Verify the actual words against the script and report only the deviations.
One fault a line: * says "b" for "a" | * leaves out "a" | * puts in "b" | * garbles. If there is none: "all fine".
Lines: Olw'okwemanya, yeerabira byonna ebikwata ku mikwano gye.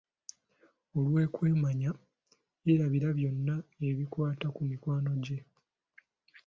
all fine